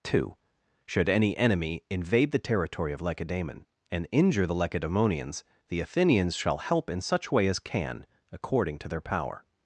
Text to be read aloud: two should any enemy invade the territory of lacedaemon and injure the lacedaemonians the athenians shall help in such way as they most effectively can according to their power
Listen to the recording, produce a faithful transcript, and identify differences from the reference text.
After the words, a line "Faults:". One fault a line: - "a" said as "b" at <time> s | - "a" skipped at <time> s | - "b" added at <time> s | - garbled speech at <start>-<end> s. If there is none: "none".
two should any enemy invade the territory of lacedaemon and injure the lacedaemonians the athenians shall help in such way as can according to their power
Faults:
- "they most effectively" skipped at 7.6 s